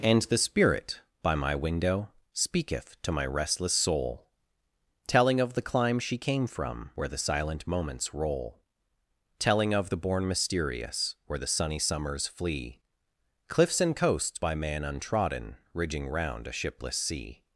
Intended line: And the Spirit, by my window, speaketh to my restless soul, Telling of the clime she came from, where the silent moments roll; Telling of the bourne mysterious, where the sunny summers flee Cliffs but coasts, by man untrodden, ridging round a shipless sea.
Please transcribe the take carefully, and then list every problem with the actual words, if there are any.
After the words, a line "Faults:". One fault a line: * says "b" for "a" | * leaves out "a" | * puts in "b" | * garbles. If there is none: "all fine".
And the Spirit, by my window, speaketh to my restless soul, Telling of the clime she came from, where the silent moments roll; Telling of the bourne mysterious, where the sunny summers flee Cliffs and coasts, by man untrodden, ridging round a shipless sea.
Faults:
* says "and" for "but"